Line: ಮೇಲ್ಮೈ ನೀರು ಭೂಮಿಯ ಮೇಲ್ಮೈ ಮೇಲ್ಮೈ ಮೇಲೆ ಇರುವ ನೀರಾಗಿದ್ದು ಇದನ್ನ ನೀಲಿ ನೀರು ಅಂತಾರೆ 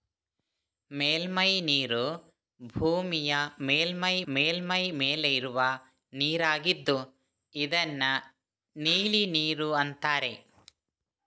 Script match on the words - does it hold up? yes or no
yes